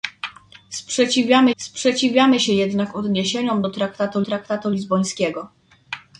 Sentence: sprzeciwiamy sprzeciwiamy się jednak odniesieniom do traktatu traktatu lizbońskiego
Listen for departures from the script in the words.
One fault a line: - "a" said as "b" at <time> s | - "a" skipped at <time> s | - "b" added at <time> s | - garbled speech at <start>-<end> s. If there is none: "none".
none